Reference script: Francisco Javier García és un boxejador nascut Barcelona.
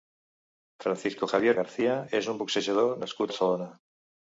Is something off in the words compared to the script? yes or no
no